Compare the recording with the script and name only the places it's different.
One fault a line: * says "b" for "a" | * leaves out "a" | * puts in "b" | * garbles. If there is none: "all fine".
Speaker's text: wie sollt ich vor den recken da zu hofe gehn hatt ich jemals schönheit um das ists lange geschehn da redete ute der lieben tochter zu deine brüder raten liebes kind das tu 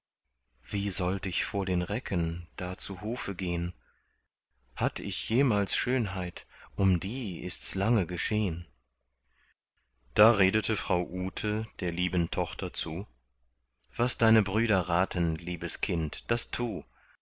* says "die" for "das"
* puts in "frau"
* puts in "was"